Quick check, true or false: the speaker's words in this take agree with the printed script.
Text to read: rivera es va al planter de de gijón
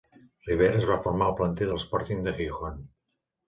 false